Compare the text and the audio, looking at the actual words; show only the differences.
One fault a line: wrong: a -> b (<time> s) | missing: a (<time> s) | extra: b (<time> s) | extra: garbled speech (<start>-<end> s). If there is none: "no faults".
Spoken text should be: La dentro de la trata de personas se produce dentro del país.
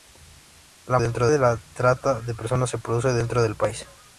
no faults